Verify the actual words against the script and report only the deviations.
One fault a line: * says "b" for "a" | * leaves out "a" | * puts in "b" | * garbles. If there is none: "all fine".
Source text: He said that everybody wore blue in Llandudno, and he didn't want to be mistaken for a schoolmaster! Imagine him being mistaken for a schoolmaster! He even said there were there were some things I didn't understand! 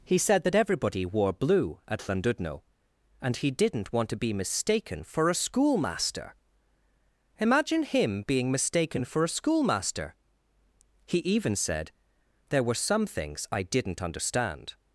* says "at" for "in"
* leaves out "there were"